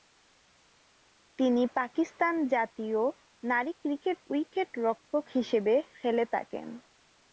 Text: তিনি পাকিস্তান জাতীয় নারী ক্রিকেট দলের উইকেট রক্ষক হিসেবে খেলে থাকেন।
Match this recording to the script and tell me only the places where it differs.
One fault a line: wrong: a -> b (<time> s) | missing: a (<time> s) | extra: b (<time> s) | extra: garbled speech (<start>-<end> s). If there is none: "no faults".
missing: দলের (4.2 s)